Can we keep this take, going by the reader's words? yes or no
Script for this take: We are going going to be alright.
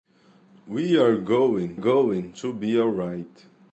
yes